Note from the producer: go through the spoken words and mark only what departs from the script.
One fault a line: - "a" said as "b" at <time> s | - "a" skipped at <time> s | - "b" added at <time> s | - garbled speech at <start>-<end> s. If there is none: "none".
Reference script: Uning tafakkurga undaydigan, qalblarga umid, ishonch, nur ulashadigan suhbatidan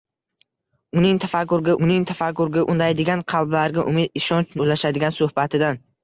- "uning tafakkurga" added at 1.9 s
- "nur" skipped at 4.6 s